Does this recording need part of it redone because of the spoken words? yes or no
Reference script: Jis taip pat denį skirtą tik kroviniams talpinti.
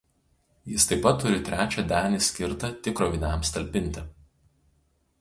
yes